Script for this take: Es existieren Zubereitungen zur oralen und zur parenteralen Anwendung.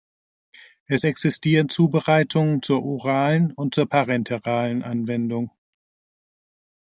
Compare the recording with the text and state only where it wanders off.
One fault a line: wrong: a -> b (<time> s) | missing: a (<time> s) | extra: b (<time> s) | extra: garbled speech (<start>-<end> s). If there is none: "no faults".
no faults